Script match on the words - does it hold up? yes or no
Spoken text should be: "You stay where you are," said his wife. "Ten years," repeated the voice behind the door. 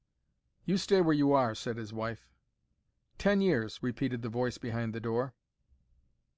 yes